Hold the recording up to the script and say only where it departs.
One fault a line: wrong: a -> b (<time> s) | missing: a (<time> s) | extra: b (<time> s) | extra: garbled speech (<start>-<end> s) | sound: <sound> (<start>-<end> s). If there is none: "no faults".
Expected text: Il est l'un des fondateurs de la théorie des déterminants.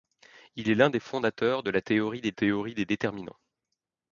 extra: théorie des (2.3 s)